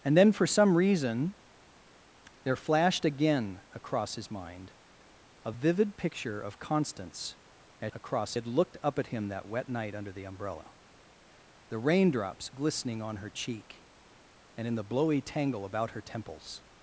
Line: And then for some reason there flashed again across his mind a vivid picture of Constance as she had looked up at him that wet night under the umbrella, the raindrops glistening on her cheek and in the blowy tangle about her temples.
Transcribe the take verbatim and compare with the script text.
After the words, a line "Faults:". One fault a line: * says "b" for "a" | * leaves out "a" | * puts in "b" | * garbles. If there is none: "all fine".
And then for some reason there flashed again across his mind a vivid picture of Constance as across had looked up at him that wet night under the umbrella, the raindrops glistening on her cheek and in the blowy tangle about her temples.
Faults:
* says "across" for "she"